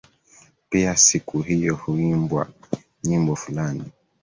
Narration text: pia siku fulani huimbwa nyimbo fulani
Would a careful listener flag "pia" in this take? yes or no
no